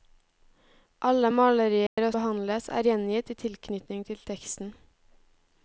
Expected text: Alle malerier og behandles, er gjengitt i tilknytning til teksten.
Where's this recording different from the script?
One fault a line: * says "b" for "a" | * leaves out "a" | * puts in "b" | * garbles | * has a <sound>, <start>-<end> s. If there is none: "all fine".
* has a dropout, 1.9-2.0 s